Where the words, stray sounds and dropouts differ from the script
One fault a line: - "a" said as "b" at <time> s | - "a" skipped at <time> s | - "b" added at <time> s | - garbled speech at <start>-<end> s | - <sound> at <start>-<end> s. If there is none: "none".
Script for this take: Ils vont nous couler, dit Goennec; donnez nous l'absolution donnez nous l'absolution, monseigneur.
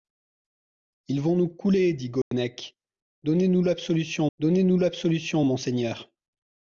- dropout at 2.2-2.3 s